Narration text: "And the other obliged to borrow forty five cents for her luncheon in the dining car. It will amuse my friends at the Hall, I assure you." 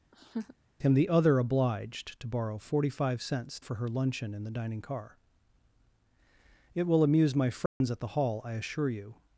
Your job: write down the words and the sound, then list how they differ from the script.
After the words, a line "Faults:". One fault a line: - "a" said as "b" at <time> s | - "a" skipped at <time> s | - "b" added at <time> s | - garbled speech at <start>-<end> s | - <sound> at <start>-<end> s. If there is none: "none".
"And the other obliged to borrow forty five cents for her luncheon in the dining car. It will amuse my friends at the Hall, I assure you."
Faults:
- laugh at 0.1-0.5 s
- dropout at 7.7-7.8 s